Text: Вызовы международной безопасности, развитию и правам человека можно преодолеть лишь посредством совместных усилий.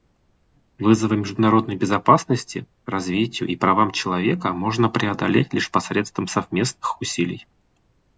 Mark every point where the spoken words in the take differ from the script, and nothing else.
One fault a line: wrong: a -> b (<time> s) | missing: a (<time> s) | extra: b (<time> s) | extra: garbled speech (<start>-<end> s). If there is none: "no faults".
no faults